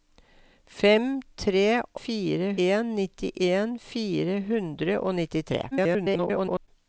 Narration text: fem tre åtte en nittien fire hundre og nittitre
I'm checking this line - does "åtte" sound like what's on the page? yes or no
no